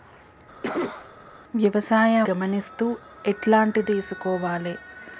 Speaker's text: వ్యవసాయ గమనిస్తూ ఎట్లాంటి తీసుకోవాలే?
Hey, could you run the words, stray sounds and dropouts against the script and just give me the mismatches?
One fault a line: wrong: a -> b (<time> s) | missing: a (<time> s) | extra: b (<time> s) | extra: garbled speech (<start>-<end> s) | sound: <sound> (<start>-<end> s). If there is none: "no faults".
sound: cough (0.6-1.1 s)